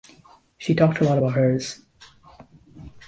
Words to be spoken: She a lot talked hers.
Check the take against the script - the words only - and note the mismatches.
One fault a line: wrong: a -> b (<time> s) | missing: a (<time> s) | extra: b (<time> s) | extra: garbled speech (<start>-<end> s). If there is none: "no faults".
extra: talked (0.7 s)
wrong: talked -> about (1.2 s)